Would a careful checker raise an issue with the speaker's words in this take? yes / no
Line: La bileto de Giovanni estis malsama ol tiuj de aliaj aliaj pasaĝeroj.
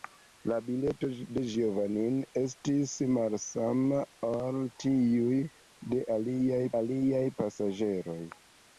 no